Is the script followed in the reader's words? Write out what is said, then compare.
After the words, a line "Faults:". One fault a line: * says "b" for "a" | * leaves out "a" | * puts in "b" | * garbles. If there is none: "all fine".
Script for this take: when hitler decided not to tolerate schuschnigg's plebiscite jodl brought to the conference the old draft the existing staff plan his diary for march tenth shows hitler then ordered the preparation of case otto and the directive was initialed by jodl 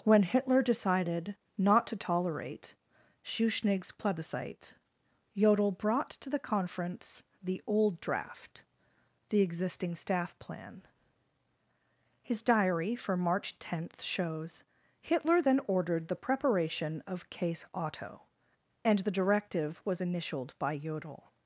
when hitler decided not to tolerate schuschnigg's plebiscite jodl brought to the conference the old draft the existing staff plan his diary for march tenth shows hitler then ordered the preparation of case otto and the directive was initialed by jodl
Faults:
all fine